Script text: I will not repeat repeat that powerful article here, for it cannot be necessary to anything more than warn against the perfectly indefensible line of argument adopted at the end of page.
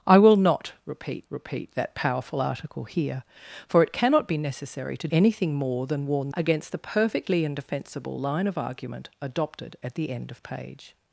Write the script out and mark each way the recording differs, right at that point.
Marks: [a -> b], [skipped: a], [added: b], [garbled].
I will not repeat repeat that powerful article here, for it cannot be necessary to anything more than warn against the perfectly indefensible line of argument adopted at the end of page.